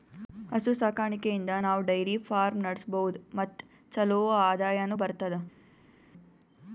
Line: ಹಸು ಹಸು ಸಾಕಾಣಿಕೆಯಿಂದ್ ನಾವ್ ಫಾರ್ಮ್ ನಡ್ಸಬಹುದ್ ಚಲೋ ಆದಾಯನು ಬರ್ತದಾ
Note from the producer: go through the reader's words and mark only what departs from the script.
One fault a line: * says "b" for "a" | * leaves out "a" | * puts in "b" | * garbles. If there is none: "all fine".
* leaves out "ಹಸು"
* puts in "ಡೈರಿ"
* puts in "ಮತ್"